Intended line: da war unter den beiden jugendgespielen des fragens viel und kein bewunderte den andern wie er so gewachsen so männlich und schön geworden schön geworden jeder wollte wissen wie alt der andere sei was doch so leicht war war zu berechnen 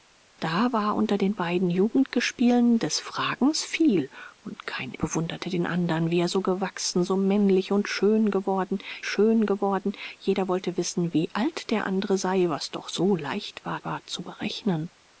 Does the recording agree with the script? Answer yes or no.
yes